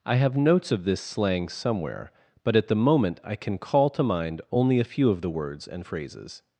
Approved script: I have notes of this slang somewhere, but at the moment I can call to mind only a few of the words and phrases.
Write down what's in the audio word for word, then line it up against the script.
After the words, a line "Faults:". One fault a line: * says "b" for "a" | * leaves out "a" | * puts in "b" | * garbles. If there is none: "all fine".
I have notes of this slang somewhere, but at the moment I can call to mind only a few of the words and phrases.
Faults:
all fine